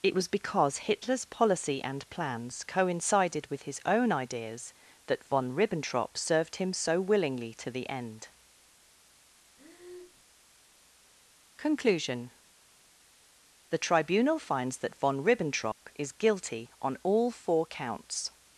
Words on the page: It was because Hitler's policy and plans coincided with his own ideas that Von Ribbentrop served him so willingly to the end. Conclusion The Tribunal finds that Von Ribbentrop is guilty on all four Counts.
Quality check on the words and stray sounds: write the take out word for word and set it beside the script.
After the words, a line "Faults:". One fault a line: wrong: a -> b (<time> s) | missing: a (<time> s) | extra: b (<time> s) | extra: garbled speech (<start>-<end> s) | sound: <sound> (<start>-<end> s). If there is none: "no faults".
It was because Hitler's policy and plans coincided with his own ideas that Von Ribbentrop served him so willingly to the end. Conclusion The Tribunal finds that Von Ribbentrop is guilty on all four Counts.
Faults:
sound: breath (9.6-10.2 s)
sound: dropout (15.7-15.8 s)